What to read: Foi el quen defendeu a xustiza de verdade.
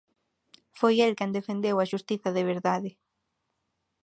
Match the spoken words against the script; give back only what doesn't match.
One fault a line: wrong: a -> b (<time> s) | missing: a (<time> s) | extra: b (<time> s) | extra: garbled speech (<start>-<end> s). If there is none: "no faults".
no faults